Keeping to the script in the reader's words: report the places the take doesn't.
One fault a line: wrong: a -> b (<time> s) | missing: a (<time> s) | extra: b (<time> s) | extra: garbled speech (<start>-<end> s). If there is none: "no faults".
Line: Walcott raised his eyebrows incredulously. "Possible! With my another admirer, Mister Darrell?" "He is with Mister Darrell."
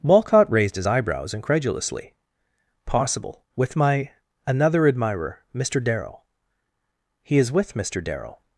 no faults